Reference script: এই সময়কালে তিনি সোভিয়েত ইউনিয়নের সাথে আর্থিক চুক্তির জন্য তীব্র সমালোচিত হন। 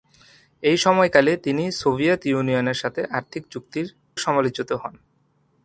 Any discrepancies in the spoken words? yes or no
yes